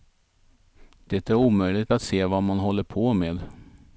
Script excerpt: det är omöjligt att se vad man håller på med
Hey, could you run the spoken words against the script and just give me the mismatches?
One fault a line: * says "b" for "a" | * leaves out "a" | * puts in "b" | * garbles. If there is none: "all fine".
all fine